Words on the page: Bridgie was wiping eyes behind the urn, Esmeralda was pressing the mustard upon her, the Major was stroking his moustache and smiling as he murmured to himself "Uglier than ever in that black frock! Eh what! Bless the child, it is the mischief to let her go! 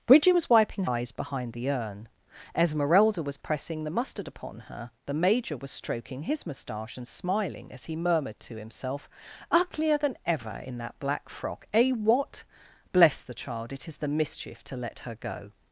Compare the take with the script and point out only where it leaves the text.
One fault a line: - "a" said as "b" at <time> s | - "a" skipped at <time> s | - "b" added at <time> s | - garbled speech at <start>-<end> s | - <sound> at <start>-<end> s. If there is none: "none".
none